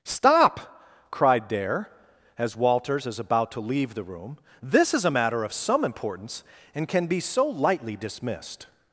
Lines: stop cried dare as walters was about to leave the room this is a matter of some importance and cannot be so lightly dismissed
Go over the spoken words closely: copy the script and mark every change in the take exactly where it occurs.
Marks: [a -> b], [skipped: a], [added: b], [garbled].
stop cried dare as walters [was -> is] about to leave the room this is a matter of some importance and [cannot -> can] be so lightly dismissed